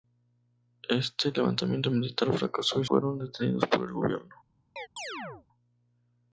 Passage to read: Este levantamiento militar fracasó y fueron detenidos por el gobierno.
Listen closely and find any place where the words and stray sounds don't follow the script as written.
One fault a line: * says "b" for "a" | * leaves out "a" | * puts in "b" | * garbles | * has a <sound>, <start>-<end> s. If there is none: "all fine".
* has a chirp, 4.8-5.5 s